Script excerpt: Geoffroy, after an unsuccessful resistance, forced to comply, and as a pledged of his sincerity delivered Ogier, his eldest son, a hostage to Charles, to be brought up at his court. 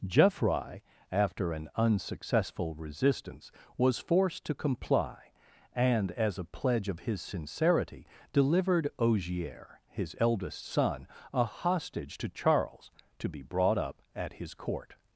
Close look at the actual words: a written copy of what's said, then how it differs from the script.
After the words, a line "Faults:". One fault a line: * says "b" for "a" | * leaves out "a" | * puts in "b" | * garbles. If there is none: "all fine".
Geoffroy, after an unsuccessful resistance, was forced to comply, and as a pledge of his sincerity delivered Ogier, his eldest son, a hostage to Charles, to be brought up at his court.
Faults:
* puts in "was"
* says "pledge" for "pledged"